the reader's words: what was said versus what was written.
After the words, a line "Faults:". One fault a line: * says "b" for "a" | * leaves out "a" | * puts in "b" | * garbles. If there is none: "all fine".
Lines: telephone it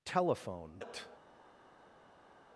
telephone it
Faults:
all fine